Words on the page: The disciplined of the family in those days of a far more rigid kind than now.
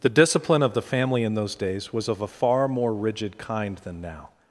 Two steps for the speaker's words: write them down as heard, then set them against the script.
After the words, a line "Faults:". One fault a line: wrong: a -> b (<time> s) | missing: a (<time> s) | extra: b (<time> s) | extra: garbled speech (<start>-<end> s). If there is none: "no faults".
The discipline of the family in those days was of a far more rigid kind than now.
Faults:
wrong: disciplined -> discipline (0.1 s)
extra: was (1.9 s)